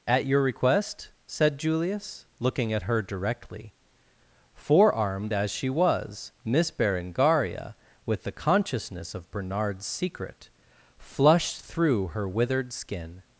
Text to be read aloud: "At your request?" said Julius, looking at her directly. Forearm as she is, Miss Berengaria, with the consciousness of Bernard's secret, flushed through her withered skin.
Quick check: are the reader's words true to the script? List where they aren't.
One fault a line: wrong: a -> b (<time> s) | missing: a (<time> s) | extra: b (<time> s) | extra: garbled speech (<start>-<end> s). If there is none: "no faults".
wrong: Forearm -> Forearmed (4.5 s)
wrong: is -> was (5.7 s)